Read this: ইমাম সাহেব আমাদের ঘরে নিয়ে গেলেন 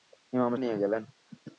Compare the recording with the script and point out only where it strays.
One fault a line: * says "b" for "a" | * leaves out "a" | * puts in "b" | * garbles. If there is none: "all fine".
* leaves out "সাহেব আমাদের ঘরে"